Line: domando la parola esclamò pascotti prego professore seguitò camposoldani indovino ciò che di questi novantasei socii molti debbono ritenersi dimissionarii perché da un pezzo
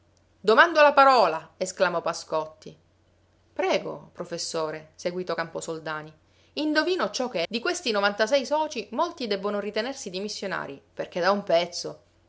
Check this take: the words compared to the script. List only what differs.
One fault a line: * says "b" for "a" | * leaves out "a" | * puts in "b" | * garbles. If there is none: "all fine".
all fine